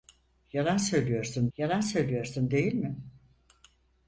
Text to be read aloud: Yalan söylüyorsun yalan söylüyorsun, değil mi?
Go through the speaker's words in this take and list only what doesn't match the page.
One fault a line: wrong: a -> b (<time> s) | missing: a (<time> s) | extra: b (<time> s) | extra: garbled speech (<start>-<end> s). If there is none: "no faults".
no faults